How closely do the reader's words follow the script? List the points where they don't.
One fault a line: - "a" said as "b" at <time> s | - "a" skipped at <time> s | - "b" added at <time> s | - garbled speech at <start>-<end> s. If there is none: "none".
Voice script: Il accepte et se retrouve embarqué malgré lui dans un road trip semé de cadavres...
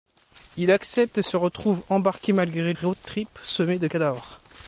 - "lui dans un" skipped at 2.7 s